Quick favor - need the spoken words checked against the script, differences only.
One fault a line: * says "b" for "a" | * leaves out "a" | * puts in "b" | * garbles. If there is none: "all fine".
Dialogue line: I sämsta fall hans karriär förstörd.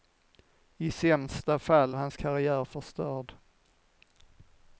all fine